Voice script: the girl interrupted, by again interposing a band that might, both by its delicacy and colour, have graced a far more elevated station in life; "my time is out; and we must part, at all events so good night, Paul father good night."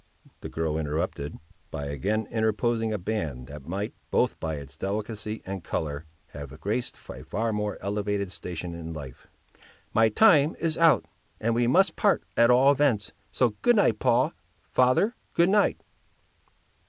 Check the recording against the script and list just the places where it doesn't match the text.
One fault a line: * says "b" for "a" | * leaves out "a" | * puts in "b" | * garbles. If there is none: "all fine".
all fine